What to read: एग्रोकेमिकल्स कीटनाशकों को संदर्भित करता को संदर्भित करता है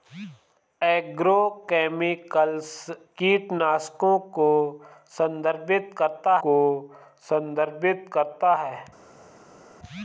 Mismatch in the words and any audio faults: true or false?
false